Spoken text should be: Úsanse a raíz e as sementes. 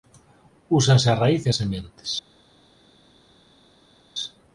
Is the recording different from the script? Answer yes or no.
no